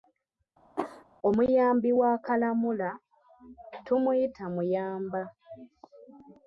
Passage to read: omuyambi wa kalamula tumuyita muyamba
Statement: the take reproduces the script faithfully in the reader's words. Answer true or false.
true